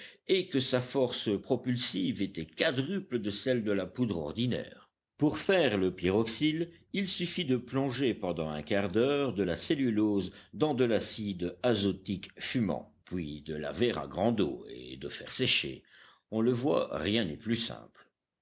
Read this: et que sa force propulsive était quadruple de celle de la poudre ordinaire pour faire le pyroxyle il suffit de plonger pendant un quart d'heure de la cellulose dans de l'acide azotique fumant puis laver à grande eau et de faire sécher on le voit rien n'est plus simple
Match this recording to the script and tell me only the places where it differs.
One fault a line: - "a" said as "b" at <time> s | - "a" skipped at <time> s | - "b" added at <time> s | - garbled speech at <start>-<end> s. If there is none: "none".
- "de" added at 13.4 s